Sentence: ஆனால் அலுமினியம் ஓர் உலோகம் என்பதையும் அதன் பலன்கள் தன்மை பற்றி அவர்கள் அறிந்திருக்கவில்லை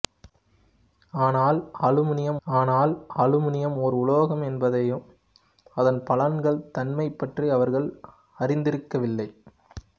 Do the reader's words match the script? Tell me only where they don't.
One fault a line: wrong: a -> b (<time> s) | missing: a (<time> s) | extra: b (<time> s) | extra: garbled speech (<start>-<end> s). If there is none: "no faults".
extra: ஆனால் அலுமினியம் (2.5 s)